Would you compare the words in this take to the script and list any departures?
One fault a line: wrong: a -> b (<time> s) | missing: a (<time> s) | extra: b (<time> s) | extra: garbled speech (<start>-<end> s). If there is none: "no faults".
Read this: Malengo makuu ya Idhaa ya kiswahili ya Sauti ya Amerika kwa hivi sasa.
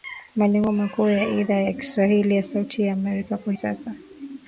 missing: hivi (3.5 s)